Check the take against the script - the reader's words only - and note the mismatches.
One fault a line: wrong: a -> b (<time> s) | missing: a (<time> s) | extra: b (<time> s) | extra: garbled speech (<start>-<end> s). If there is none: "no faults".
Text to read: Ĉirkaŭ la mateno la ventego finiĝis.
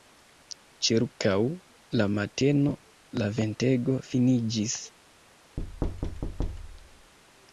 no faults